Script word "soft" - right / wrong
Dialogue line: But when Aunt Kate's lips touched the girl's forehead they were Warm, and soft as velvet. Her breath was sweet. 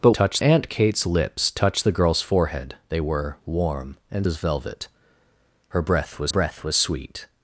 wrong